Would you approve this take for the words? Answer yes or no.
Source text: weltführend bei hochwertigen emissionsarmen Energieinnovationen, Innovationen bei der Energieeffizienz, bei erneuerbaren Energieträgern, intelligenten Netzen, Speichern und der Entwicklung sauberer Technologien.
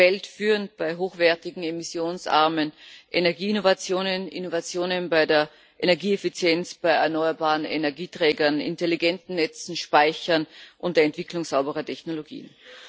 yes